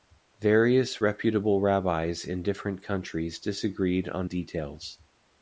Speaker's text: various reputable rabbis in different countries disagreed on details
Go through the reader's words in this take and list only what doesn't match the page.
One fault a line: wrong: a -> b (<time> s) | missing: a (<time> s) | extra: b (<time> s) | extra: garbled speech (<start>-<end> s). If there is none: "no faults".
no faults